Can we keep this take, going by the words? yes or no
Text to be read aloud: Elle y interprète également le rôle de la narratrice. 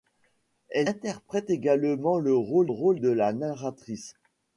no